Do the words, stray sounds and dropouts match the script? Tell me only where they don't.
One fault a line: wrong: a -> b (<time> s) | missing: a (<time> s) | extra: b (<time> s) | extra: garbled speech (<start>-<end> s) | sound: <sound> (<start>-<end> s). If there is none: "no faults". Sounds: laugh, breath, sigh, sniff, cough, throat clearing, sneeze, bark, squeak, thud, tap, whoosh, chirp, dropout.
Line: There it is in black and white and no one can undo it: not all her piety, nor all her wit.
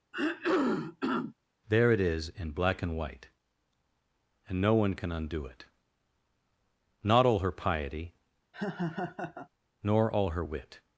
sound: throat clearing (0.1-1.3 s)
sound: laugh (8.5-9.5 s)